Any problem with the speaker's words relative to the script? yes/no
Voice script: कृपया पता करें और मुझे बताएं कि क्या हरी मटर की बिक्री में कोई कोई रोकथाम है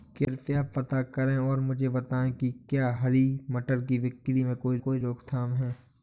no